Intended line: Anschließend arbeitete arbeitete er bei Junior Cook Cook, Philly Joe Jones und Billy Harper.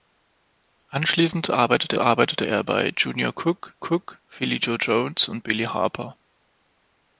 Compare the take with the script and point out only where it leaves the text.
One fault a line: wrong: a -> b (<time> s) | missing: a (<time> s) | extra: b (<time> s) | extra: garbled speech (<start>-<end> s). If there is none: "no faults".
no faults